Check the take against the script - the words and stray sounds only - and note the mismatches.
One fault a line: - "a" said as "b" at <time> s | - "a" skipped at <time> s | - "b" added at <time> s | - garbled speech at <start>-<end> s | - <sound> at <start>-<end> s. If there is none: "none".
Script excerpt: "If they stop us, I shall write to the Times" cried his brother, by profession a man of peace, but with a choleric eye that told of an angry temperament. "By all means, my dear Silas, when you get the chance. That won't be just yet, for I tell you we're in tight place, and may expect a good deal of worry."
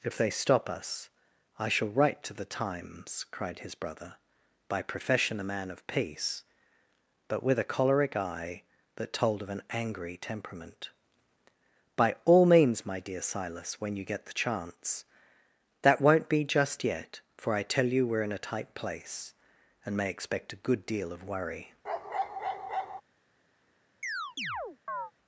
- "a" added at 18.3 s
- bark at 21.8-23.0 s
- chirp at 24.0-25.1 s